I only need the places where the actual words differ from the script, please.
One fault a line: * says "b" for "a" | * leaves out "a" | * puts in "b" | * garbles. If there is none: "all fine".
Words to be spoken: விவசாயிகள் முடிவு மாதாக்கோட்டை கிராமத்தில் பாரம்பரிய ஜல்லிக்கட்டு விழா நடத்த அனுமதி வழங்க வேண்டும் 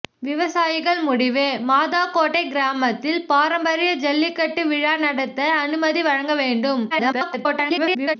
* garbles